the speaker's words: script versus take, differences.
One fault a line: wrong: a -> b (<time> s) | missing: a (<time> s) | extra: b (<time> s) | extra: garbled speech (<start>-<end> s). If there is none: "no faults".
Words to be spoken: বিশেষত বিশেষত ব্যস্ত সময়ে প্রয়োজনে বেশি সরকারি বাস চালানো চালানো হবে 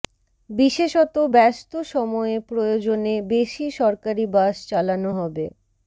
missing: বিশেষত (1.1 s)
missing: চালানো (5.1 s)